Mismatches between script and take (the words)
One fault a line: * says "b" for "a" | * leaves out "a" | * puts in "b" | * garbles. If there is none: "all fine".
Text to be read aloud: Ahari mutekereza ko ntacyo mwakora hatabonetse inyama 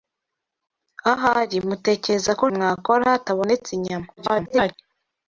* leaves out "ntacyo"
* garbles